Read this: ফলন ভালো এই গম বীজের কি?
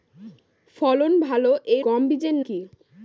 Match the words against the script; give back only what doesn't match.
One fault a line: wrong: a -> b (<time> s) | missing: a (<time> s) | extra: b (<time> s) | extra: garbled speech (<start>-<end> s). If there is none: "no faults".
no faults